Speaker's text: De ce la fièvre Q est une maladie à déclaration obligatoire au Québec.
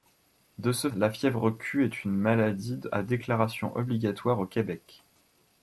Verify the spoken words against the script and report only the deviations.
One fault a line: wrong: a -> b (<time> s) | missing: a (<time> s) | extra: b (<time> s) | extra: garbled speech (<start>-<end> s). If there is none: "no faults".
no faults